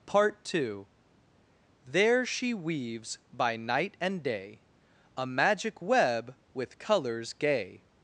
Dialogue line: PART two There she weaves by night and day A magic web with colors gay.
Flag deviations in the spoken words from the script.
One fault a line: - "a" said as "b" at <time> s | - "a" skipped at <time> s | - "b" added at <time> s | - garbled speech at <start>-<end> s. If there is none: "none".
none